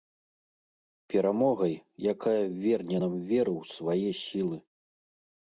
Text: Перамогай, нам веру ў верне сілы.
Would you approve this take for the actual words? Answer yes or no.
no